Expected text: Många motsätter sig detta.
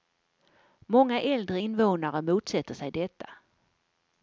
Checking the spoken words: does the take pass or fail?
fail